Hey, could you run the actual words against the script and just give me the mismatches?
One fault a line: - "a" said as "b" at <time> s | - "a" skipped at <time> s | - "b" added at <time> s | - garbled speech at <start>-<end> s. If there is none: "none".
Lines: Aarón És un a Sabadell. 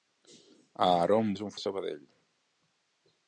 none